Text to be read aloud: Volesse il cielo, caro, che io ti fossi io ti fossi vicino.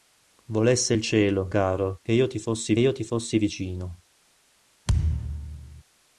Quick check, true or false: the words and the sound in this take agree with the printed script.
false